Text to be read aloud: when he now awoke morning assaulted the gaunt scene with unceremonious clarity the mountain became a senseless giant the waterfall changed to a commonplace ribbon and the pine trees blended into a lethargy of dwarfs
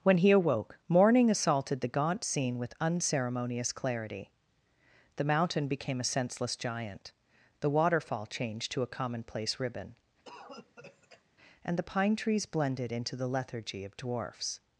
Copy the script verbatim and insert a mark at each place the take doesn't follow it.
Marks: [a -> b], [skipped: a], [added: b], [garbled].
when he [skipped: now] awoke morning assaulted the gaunt scene with unceremonious clarity the mountain became a senseless giant the waterfall changed to a commonplace ribbon and the pine trees blended into [a -> the] lethargy of dwarfs